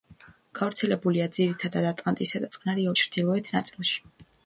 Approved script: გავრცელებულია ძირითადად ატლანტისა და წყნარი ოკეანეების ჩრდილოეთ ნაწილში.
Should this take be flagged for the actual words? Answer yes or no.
yes